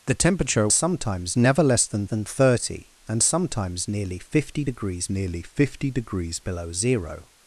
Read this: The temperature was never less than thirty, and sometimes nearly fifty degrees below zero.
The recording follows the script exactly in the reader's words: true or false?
false